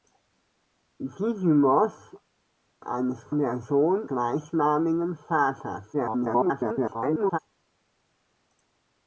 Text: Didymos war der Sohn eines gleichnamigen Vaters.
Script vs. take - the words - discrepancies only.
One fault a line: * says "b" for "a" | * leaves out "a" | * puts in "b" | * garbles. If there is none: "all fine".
* says "eines" for "war"
* leaves out "eines"
* garbles